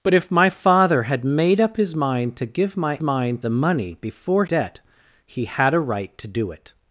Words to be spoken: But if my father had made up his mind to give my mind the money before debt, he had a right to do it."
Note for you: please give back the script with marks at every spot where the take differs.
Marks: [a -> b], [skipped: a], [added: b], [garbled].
But if my father had made up his mind to give my mind the money before debt, he had a right to do it."